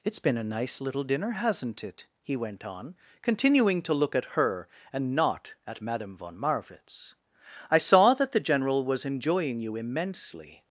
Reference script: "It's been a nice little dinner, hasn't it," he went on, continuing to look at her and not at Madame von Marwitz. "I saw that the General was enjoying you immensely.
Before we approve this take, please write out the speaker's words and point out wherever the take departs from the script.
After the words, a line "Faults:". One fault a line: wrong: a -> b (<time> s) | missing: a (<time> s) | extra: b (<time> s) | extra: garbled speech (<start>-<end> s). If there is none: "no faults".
"It's been a nice little dinner, hasn't it," he went on, continuing to look at her and not at Madame von Marwitz. "I saw that the General was enjoying you immensely.
Faults:
no faults